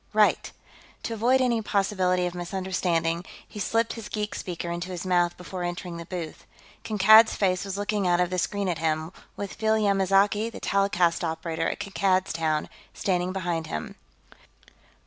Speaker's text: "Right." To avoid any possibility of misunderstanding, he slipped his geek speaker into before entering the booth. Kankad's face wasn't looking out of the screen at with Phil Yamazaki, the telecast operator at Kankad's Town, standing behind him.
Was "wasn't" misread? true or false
true